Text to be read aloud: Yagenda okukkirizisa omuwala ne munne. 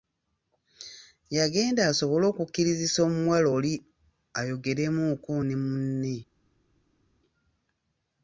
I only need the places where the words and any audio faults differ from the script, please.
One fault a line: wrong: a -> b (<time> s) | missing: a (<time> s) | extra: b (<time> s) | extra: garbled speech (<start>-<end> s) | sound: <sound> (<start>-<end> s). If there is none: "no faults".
extra: asobole (1.9 s)
extra: oli ayogeremuuko (3.6 s)